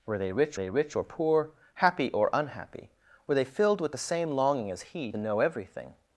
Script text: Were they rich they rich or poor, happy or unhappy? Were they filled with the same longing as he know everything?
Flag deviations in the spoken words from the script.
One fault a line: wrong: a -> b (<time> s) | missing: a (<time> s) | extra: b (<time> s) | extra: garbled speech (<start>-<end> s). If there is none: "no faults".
no faults